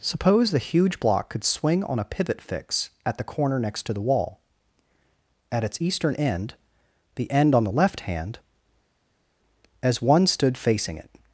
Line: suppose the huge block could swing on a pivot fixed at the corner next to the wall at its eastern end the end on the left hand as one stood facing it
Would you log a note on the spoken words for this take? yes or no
yes